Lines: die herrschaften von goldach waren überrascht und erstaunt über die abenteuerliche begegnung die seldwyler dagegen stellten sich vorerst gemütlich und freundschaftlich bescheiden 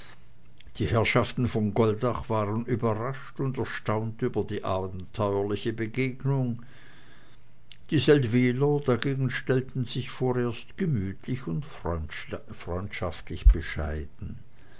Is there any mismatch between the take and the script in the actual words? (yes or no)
no